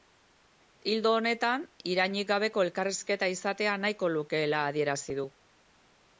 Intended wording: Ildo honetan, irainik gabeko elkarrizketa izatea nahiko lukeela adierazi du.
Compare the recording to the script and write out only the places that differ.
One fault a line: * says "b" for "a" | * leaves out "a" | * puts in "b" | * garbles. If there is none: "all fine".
all fine